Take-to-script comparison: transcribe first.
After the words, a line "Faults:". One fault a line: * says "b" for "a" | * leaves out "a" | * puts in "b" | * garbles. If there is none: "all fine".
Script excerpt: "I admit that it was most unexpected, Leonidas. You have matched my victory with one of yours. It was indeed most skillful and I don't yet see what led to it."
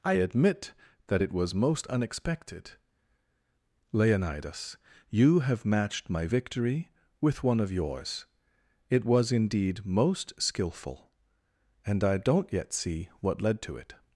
"I admit that it was most unexpected, Leonidas. You have matched my victory with one of yours. It was indeed most skillful and I don't yet see what led to it."
Faults:
all fine